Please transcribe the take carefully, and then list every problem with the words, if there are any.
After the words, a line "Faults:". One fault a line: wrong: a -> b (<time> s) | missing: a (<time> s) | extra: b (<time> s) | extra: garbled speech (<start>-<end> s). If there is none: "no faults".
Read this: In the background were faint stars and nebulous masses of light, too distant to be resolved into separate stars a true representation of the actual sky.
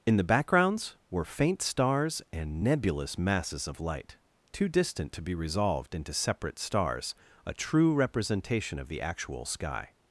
In the backgrounds were faint stars and nebulous masses of light, too distant to be resolved into separate stars a true representation of the actual sky.
Faults:
wrong: background -> backgrounds (0.2 s)